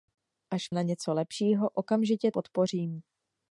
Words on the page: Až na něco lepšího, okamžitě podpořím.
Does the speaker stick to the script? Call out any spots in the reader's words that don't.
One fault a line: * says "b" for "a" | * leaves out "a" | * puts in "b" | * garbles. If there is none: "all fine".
all fine